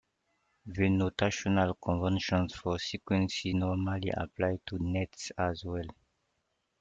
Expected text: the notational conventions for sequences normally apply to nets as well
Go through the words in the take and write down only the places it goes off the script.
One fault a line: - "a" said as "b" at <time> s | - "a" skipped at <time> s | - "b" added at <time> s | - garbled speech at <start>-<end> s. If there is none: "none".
none